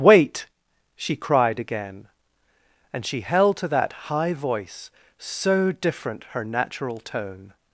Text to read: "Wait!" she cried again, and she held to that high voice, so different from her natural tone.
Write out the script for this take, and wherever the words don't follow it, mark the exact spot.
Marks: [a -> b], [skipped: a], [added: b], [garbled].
"Wait!" she cried again, and she held to that high voice, so different [skipped: from] her natural tone.